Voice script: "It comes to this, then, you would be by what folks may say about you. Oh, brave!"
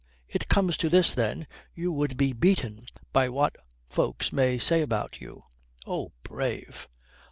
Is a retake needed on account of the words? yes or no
yes